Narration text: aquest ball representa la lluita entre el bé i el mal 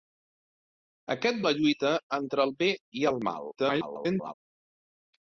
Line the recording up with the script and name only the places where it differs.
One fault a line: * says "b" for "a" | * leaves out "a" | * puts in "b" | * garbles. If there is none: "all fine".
* leaves out "ball representa"
* garbles